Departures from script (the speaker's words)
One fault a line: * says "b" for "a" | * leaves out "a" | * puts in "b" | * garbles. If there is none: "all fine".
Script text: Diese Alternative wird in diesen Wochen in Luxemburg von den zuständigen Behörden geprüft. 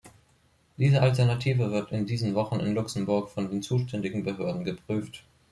all fine